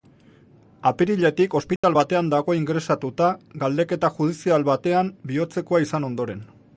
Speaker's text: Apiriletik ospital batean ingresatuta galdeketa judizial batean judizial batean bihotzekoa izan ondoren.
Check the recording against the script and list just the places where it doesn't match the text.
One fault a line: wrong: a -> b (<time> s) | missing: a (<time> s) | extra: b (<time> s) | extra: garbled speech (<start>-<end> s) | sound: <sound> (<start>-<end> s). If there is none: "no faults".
sound: dropout (1.8-1.8 s)
extra: dago (2.3 s)
missing: judizial batean (5.1 s)